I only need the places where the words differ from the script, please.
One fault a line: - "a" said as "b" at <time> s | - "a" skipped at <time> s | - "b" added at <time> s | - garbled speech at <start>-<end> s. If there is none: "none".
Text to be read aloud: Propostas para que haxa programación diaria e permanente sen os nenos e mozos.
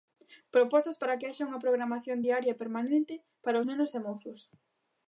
- "unha" added at 1.5 s
- "sen" said as "para" at 3.4 s